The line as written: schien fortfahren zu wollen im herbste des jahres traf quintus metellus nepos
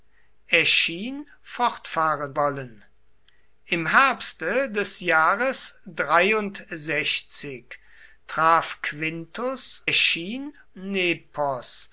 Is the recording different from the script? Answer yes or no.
yes